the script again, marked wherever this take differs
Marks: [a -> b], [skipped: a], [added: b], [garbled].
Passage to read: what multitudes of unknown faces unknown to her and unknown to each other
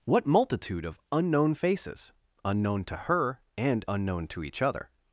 what [multitudes -> multitude] of unknown faces unknown to her and unknown to each other